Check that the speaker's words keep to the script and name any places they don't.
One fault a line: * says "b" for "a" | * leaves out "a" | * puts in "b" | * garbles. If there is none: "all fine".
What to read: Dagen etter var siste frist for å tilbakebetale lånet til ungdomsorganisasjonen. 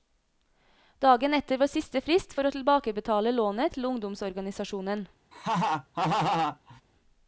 all fine